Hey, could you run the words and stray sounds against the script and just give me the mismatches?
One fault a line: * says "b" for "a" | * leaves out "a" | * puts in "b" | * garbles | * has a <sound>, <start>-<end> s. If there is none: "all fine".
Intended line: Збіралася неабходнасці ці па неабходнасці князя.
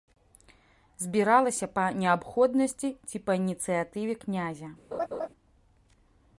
* puts in "па"
* says "ініцыятыве" for "неабходнасці"
* has a laugh, 4.9-5.3 s